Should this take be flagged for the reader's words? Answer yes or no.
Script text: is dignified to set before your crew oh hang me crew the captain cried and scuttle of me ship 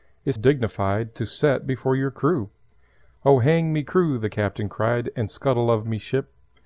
no